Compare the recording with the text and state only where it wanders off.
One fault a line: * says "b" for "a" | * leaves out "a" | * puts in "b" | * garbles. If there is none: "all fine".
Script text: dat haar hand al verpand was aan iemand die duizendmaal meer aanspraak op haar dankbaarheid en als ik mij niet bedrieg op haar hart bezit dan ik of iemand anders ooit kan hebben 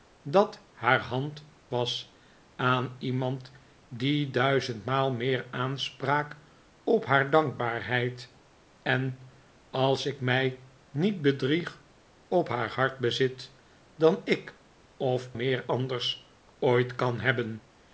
* leaves out "al verpand"
* says "meer" for "iemand"